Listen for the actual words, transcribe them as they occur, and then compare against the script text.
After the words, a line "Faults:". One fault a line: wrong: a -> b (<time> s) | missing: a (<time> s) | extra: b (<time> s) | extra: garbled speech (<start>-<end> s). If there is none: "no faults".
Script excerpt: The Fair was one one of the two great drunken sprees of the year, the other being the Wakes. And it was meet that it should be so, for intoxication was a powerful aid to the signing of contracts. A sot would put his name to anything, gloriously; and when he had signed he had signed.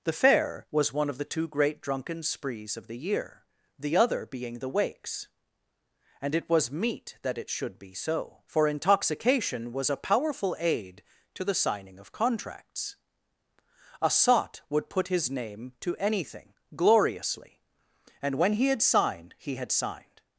The Fair was one of the two great drunken sprees of the year, the other being the Wakes. And it was meet that it should be so, for intoxication was a powerful aid to the signing of contracts. A sot would put his name to anything, gloriously; and when he had signed he had signed.
Faults:
missing: one (1.1 s)